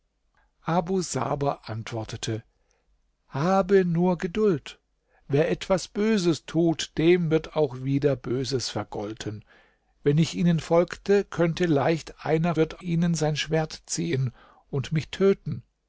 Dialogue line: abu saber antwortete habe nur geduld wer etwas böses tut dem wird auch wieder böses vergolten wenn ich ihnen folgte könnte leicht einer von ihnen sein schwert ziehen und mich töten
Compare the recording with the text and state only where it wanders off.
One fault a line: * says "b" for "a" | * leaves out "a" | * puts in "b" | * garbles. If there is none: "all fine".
* says "wird" for "von"